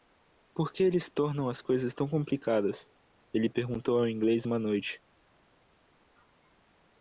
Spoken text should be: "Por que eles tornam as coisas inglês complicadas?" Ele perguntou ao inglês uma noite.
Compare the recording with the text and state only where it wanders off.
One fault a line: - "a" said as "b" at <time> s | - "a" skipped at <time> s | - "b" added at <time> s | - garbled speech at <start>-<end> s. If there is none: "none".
- "inglês" said as "tão" at 1.9 s